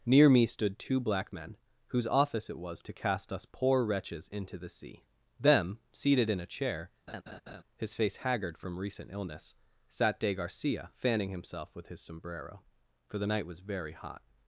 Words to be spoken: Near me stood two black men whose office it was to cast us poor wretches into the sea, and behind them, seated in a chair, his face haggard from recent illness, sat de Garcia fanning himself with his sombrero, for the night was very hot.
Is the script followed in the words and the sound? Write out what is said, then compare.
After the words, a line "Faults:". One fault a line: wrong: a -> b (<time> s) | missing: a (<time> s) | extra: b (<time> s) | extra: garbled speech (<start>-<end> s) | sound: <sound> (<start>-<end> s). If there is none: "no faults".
Near me stood two black men whose office it was to cast us poor wretches into the sea, them, seated in a chair, his face haggard from recent illness, sat de Garcia fanning himself with his sombrero, for the night was very hot.
Faults:
missing: and behind (5.0 s)
sound: laugh (7.1-7.6 s)